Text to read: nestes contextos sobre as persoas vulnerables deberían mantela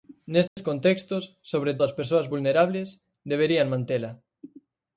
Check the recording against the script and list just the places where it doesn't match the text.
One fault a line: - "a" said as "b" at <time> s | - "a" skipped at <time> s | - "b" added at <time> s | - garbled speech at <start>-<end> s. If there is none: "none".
none